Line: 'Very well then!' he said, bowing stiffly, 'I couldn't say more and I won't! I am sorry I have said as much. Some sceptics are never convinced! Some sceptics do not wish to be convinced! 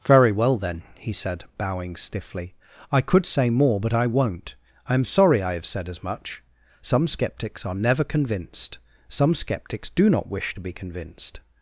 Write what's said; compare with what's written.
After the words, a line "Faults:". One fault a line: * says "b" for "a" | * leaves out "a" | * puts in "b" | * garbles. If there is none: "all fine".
'Very well then!' he said, bowing stiffly, 'I could say more but I won't! I am sorry I have said as much. Some sceptics are never convinced! Some sceptics do not wish to be convinced!
Faults:
* says "could" for "couldn't"
* says "but" for "and"